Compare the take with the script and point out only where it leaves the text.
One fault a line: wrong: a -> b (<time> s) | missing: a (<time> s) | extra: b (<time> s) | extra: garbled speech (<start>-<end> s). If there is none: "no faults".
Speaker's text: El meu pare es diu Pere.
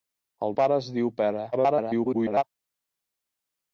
missing: meu (0.6 s)
extra: garbled speech (1.5-2.4 s)